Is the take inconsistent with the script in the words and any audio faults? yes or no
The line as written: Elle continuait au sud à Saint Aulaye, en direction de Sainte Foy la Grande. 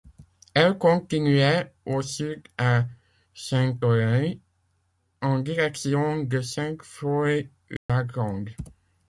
yes